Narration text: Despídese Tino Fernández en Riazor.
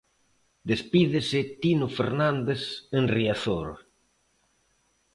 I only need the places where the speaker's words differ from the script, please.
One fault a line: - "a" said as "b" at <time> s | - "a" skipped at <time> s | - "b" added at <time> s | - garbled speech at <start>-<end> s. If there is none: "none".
none